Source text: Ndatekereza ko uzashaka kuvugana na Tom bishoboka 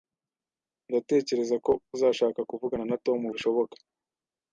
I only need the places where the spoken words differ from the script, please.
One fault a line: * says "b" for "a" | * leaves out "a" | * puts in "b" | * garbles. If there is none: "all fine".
all fine